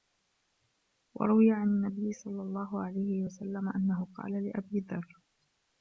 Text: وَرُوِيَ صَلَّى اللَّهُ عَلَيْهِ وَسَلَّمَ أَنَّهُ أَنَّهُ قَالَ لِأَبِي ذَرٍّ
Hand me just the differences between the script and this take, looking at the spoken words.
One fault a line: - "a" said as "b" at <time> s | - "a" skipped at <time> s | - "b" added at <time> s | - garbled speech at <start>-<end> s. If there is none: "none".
- "عَنْ النَّبِيِّ" added at 1.5 s
- "أَنَّهُ" skipped at 4.1 s